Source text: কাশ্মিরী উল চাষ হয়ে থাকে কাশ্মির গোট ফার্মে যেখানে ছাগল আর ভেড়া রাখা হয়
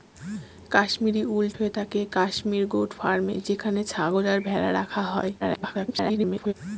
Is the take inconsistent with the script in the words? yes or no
yes